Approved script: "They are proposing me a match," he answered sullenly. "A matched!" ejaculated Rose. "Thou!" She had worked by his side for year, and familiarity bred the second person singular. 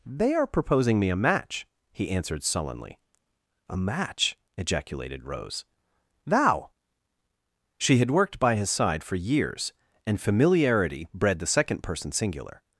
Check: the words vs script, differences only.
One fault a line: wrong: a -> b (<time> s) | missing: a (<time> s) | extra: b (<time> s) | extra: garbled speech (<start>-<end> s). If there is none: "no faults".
wrong: matched -> match (3.8 s)
wrong: year -> years (9.2 s)